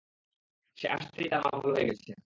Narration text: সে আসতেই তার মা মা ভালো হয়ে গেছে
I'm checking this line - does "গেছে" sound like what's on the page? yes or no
yes